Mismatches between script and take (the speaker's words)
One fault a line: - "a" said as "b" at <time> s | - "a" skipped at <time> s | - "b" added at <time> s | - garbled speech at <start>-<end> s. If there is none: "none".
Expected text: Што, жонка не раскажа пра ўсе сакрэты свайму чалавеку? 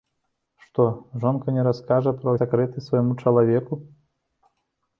- "ўсе" skipped at 2.3 s